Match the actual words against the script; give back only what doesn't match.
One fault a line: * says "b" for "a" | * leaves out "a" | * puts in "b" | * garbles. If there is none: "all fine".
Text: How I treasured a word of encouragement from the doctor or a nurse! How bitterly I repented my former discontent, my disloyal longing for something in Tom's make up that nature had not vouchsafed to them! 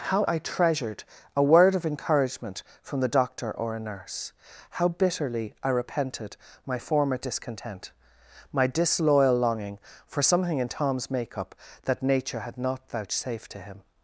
* says "him" for "them"